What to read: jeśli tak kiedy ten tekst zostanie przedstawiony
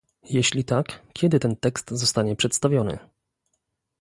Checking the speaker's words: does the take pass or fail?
pass